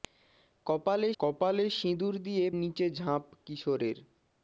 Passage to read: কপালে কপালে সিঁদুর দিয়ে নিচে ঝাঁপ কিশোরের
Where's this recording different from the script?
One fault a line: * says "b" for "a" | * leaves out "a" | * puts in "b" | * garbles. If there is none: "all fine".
all fine